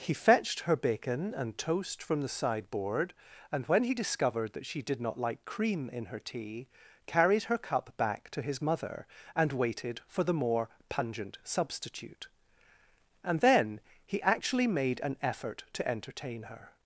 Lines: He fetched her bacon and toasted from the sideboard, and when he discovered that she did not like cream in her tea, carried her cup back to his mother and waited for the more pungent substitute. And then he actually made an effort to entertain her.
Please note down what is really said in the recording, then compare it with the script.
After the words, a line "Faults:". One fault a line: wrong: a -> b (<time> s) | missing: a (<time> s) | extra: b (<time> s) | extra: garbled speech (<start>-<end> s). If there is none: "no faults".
He fetched her bacon and toast from the sideboard, and when he discovered that she did not like cream in her tea, carried her cup back to his mother and waited for the more pungent substitute. And then he actually made an effort to entertain her.
Faults:
wrong: toasted -> toast (1.6 s)